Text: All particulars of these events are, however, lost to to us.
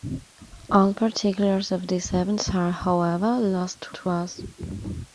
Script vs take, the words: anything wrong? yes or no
no